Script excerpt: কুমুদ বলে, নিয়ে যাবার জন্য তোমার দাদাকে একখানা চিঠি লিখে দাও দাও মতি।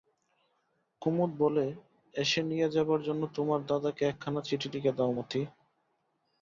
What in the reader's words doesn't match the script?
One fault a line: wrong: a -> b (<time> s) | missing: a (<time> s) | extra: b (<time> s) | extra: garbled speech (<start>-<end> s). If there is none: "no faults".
extra: এসে (2.1 s)
missing: দাও (5.1 s)